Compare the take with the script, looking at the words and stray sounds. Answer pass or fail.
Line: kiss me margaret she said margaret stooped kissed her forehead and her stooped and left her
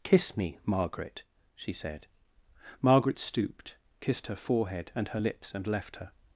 fail